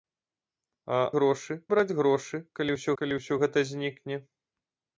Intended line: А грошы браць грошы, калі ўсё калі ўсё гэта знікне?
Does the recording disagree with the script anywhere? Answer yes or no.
no